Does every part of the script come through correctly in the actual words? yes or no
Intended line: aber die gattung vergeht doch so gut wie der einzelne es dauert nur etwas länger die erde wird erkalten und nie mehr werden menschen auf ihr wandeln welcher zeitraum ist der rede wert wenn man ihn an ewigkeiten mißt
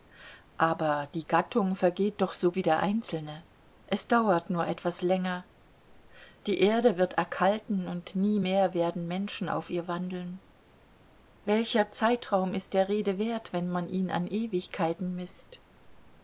no